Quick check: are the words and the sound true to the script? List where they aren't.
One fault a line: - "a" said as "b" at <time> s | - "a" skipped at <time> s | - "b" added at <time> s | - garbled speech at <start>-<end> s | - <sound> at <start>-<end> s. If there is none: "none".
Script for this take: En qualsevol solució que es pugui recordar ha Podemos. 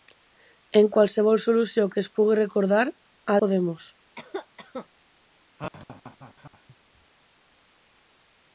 - cough at 4.2-4.9 s
- laugh at 5.6-6.8 s